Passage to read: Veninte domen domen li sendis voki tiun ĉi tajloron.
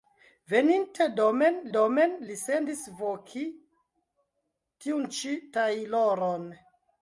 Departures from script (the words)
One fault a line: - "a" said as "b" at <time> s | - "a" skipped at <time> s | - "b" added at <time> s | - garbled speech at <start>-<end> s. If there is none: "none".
none